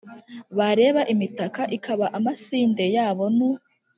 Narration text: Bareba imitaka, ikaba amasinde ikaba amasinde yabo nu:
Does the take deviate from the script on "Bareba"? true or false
false